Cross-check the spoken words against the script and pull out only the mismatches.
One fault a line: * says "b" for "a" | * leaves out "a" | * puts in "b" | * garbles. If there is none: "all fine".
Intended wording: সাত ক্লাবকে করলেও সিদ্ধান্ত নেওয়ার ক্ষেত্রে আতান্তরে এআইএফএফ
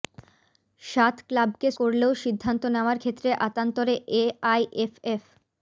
all fine